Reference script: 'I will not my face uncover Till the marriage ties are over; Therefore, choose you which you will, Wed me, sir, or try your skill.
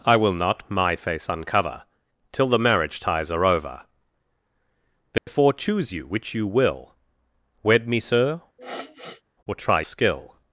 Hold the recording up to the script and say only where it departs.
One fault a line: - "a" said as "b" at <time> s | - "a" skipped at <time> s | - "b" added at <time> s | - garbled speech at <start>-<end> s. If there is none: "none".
- "your" skipped at 9.8 s